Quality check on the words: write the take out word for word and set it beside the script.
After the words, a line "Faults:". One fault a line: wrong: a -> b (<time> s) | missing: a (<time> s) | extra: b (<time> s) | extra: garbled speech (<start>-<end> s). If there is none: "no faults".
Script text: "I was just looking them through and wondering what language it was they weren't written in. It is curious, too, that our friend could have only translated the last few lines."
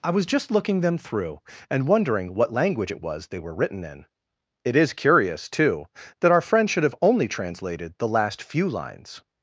"I was just looking them through and wondering what language it was they were written in. It is curious, too, that our friend should have only translated the last few lines."
Faults:
wrong: weren't -> were (3.4 s)
wrong: could -> should (6.7 s)